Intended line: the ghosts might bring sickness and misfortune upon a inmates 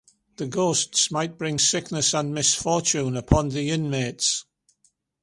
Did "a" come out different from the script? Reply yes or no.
yes